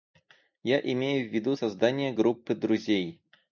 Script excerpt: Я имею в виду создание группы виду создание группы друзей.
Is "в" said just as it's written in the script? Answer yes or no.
yes